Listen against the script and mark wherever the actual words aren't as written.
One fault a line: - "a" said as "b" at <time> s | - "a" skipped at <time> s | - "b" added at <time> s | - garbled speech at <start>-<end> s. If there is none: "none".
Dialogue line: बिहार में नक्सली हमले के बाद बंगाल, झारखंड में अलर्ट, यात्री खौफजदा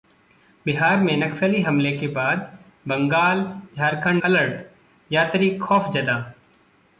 - "में" skipped at 4.2 s